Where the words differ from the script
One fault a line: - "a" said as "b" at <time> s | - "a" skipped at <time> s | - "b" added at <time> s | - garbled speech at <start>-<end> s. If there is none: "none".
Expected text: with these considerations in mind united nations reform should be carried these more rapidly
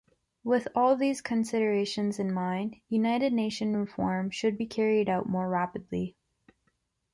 - "all" added at 0.7 s
- "these" said as "out" at 5.1 s